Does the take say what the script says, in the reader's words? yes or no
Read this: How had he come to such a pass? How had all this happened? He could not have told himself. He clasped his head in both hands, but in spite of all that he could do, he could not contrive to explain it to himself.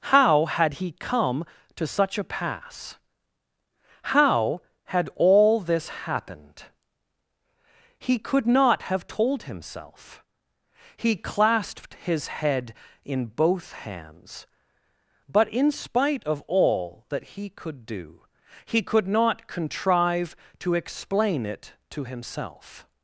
yes